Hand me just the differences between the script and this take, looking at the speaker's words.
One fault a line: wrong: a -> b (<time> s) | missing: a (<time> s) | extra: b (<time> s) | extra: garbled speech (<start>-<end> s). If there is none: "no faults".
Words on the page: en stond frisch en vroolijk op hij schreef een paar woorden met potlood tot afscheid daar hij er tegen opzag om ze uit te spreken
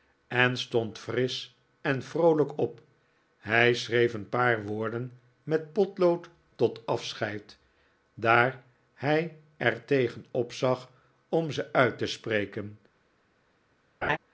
no faults